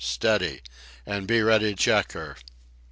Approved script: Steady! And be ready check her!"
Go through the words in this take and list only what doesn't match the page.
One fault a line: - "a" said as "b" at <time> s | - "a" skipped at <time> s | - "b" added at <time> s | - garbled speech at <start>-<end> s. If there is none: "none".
none